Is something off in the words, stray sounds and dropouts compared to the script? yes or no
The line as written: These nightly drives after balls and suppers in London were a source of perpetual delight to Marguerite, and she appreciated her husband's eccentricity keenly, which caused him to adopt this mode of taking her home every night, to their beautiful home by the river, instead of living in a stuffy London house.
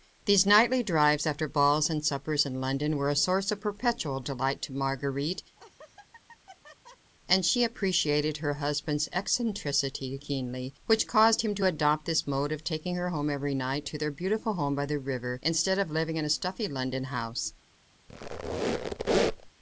yes